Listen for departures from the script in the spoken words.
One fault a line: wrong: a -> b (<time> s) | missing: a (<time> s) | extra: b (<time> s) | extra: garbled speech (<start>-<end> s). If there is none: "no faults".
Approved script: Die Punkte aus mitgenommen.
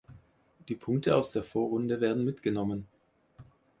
extra: der Vorrunde werden (1.3 s)